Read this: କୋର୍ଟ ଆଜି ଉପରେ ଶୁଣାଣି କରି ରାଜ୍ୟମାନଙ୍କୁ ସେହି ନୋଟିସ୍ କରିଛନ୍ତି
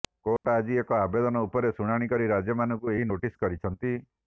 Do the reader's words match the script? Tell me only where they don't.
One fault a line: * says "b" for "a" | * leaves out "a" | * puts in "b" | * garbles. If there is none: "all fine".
* puts in "ଏକ ଆବେଦନ"
* says "ଏହି" for "ସେହି"